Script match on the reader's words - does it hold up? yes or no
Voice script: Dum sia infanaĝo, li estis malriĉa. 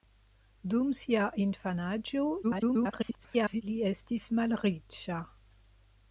no